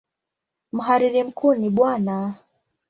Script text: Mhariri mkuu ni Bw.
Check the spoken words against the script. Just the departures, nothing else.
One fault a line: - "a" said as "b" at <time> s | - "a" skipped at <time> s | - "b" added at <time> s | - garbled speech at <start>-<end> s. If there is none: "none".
none